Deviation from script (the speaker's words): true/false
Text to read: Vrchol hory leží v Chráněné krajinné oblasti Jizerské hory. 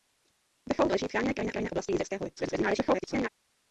true